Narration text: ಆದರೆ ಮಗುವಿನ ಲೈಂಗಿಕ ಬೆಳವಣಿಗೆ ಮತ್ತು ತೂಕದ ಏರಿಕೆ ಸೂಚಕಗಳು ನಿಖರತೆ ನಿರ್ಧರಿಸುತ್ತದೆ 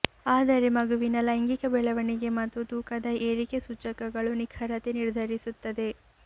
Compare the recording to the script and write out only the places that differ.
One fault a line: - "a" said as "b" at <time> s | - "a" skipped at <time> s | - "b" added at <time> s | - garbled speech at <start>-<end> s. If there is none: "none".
none